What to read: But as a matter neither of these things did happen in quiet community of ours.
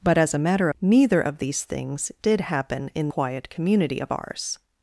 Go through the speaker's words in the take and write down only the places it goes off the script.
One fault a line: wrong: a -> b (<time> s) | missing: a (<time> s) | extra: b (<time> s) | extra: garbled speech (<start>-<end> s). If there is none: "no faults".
no faults